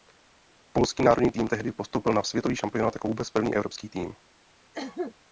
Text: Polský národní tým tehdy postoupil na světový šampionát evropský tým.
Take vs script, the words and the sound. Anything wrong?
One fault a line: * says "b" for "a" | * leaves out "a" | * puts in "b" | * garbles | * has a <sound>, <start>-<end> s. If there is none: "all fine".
* puts in "jako vůbec první"
* has a cough, 4.7-5.1 s